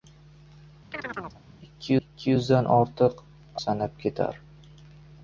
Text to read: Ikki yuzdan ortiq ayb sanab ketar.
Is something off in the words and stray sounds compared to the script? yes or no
yes